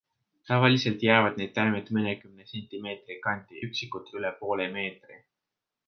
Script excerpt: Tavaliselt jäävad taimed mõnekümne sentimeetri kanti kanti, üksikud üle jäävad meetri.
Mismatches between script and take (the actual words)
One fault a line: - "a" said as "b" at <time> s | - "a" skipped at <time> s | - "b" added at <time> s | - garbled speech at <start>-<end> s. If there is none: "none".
- "need" added at 1.4 s
- "kanti" skipped at 3.6 s
- "jäävad" said as "poole" at 4.4 s